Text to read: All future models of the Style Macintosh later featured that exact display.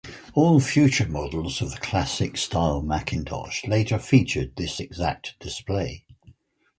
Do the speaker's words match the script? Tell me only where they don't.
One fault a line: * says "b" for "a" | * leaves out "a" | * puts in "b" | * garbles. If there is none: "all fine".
* puts in "Classic"
* says "this" for "that"